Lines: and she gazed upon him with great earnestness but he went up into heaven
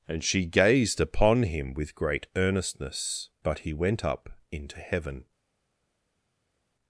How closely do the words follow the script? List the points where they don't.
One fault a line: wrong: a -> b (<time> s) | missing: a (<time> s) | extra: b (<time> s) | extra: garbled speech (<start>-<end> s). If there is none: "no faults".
no faults